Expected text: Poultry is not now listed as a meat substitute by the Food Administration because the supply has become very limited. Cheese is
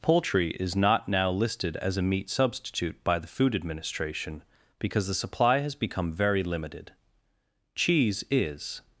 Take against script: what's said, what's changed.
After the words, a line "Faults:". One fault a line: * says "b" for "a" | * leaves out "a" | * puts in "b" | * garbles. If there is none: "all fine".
Poultry is not now listed as a meat substitute by the Food Administration because the supply has become very limited. Cheese is
Faults:
all fine